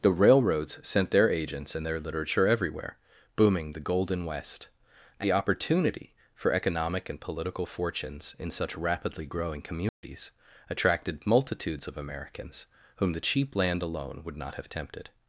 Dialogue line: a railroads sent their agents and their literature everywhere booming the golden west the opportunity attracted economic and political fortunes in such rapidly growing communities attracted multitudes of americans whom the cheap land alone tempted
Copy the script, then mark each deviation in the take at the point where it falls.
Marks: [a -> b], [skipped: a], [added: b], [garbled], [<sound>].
[a -> the] railroads sent their agents and their literature everywhere booming the golden west the opportunity [attracted -> for] economic and political fortunes in such rapidly growing communities [dropout] attracted multitudes of americans whom the cheap land alone [added: would not have] tempted